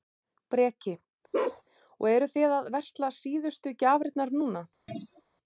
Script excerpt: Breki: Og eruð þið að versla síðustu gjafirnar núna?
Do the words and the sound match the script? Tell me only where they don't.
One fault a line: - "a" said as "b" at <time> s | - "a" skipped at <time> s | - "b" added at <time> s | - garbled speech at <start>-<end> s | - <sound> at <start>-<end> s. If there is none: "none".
- bark at 1.3-1.6 s
- throat clearing at 4.9-5.2 s